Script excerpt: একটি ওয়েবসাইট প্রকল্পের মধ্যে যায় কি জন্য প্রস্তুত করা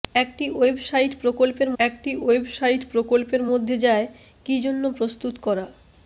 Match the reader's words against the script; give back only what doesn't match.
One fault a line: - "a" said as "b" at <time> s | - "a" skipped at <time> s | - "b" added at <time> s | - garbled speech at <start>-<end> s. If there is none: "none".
- "একটি ওয়েবসাইট প্রকল্পের" added at 1.8 s